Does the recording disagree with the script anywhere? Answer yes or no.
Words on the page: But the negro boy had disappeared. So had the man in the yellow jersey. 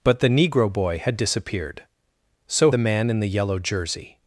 yes